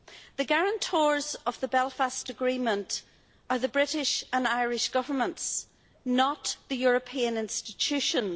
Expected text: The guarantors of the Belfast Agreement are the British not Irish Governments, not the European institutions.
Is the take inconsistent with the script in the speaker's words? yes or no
yes